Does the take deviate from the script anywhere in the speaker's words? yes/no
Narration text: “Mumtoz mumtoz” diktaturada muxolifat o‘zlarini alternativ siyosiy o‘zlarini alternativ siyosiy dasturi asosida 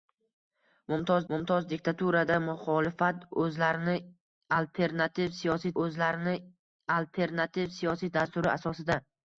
no